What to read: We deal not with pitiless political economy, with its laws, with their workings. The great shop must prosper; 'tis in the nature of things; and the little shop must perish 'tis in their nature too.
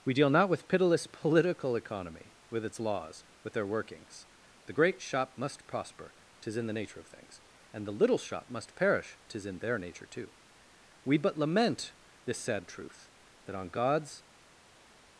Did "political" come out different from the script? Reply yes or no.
no